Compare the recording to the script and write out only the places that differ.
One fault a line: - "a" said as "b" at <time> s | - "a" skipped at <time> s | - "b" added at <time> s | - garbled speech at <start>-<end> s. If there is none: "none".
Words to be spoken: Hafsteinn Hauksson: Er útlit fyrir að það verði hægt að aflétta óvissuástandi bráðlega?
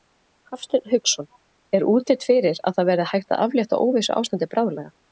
none